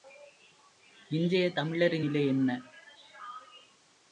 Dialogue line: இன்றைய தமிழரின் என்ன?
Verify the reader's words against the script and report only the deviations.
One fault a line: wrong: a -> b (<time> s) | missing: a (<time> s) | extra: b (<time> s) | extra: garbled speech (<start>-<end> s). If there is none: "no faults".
extra: நிலை (2.0 s)